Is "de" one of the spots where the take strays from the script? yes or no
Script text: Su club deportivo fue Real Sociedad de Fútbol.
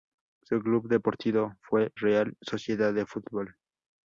no